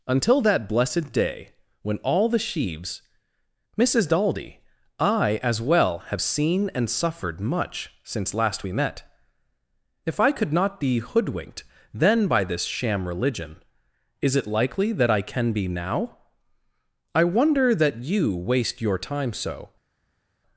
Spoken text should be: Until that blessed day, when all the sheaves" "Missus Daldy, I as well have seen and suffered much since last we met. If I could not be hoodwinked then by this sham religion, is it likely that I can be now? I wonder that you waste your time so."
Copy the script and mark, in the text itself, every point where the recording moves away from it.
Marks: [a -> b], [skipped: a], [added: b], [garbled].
Until that blessed day, when all the sheaves" "Missus Daldy, I as well have seen and suffered much since last we met. If I could not be hoodwinked then by this sham religion, is it likely that I can be now? I wonder that you waste your time so."